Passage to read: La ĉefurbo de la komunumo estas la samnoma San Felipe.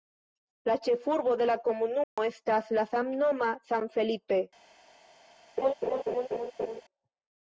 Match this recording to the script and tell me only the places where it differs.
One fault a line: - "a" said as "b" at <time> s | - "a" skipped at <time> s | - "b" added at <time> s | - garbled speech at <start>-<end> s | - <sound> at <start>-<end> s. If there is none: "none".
- dropout at 2.0-2.2 s
- laugh at 5.6-6.8 s